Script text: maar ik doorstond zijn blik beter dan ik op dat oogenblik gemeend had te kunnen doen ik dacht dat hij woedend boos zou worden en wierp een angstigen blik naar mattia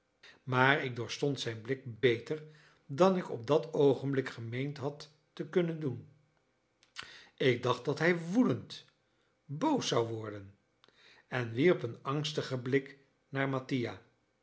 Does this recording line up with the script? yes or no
yes